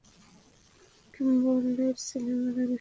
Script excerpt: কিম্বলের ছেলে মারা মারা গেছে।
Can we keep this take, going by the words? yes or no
no